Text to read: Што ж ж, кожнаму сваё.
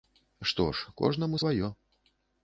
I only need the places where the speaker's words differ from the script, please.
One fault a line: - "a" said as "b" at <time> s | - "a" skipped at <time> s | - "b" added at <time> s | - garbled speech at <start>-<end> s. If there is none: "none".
- "ж" skipped at 0.9 s